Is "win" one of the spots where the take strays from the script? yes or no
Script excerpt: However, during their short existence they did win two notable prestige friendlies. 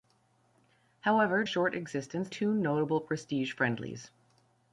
yes